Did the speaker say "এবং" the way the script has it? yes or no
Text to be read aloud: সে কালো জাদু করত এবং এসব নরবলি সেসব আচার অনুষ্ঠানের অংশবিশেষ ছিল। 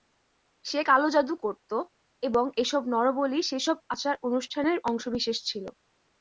yes